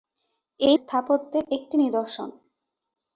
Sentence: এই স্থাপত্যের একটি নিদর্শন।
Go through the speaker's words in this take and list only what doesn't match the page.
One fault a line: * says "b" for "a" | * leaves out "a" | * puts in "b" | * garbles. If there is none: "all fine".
all fine